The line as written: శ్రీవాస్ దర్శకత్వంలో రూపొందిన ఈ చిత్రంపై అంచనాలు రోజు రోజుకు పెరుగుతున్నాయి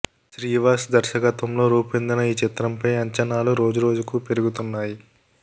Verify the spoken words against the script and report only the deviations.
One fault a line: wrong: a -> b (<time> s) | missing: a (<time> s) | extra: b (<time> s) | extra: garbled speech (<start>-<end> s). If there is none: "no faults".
no faults